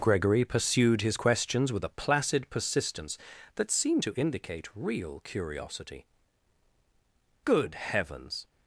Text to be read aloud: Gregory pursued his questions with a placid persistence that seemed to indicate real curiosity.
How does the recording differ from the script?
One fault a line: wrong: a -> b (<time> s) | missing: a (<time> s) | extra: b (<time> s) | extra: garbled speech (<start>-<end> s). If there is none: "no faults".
extra: Good heavens (7.4 s)